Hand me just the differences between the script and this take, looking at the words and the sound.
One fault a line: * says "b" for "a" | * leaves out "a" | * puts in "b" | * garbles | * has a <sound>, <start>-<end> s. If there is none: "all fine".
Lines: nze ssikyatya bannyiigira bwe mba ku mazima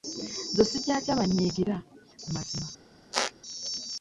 * leaves out "bwe mba"
* has a squeak, 3.1-3.3 s